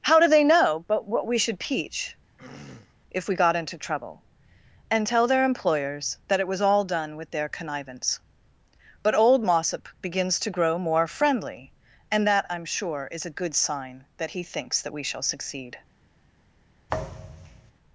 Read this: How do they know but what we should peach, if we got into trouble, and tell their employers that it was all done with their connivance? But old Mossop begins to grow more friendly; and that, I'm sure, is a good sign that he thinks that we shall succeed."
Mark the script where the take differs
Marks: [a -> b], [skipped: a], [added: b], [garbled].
How do they know but what we should peach, if we got into trouble, and tell their employers that it was all done with their connivance? But old Mossop begins to grow more friendly; and that, I'm sure, is a good sign that he thinks that we shall succeed."